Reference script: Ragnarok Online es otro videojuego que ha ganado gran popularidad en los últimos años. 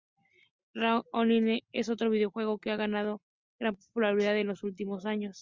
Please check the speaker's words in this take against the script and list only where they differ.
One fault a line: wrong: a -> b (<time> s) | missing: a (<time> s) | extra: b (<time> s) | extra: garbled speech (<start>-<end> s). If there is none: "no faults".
no faults